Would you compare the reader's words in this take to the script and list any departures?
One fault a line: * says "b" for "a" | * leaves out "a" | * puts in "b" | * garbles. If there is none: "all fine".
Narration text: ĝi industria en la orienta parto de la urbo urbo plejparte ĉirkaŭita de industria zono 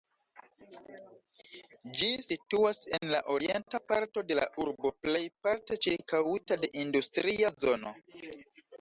* says "situas" for "industria"
* leaves out "urbo"